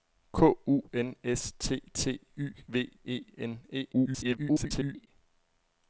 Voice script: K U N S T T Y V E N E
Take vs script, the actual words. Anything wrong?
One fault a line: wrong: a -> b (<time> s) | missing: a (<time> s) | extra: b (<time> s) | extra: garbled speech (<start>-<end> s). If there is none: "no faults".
extra: garbled speech (3.9-5.1 s)